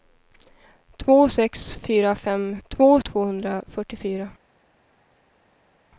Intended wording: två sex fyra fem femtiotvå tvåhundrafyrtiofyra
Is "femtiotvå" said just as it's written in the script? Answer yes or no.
no